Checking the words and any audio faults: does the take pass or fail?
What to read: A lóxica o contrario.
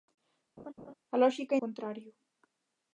fail